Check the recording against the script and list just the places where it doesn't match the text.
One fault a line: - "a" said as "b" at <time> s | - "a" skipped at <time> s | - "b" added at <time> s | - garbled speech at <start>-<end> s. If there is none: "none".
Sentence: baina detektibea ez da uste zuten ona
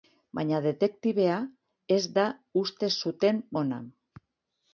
none